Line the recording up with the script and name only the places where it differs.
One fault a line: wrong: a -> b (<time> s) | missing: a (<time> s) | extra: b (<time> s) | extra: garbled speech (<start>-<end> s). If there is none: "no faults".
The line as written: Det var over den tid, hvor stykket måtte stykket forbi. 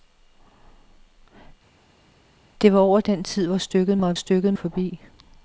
no faults